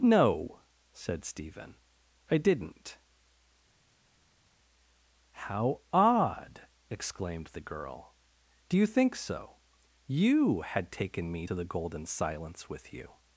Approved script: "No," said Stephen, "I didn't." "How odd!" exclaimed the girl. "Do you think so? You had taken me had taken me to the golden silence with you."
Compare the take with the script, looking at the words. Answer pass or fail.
fail